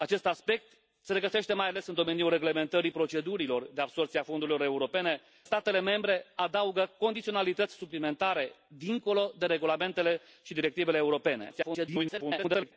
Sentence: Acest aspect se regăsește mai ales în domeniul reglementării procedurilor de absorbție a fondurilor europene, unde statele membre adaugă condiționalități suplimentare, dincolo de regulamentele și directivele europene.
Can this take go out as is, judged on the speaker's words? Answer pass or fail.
fail